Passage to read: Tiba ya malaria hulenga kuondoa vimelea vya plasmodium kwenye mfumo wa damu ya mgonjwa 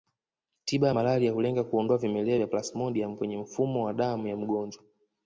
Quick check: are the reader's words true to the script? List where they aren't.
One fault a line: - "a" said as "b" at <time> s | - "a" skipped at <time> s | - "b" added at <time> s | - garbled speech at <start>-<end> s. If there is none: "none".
none